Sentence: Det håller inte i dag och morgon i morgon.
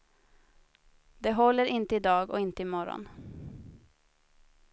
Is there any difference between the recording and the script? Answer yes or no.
yes